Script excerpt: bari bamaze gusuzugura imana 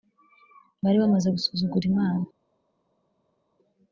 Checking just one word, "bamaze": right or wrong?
right